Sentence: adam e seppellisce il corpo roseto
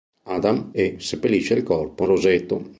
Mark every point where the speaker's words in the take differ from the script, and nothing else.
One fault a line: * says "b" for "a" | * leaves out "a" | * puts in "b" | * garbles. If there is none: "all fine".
all fine